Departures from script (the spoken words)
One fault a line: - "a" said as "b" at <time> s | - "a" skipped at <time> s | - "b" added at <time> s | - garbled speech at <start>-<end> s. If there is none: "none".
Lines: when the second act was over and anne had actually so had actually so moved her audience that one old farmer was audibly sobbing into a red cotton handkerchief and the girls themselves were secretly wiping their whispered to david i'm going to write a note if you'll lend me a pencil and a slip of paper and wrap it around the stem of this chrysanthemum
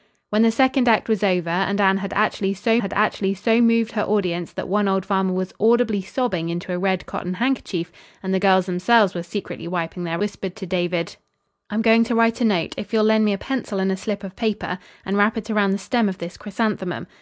none